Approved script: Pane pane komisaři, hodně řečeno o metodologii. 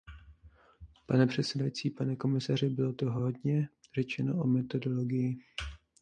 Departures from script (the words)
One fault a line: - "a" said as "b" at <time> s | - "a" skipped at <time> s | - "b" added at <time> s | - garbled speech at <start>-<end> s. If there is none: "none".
- "předsedající" added at 1.3 s
- "bylo toho" added at 2.7 s